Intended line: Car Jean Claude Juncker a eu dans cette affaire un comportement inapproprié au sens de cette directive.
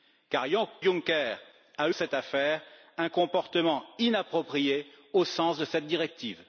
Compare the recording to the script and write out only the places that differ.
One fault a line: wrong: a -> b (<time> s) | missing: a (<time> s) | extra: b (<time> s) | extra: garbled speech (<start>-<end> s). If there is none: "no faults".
missing: Jean Claude (0.5 s)
missing: eu dans (1.9 s)